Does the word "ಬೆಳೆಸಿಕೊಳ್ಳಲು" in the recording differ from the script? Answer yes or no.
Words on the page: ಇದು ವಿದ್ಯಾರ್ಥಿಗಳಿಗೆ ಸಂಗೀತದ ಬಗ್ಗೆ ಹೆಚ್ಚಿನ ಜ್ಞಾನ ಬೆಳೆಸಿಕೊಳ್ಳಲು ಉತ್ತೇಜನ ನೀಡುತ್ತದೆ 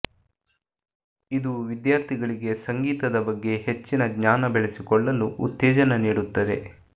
no